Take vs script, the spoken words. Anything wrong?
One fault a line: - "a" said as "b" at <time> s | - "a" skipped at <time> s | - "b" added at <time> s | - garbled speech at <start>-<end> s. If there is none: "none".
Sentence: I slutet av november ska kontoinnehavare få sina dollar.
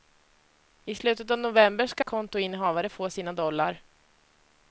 none